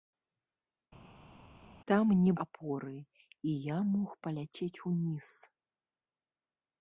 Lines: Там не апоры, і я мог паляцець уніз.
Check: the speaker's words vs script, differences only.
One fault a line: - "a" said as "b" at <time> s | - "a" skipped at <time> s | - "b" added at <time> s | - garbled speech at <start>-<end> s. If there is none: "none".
none